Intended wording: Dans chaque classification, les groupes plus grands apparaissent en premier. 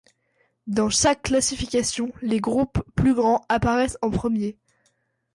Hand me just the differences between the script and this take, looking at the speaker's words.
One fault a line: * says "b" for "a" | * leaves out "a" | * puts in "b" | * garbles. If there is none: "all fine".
all fine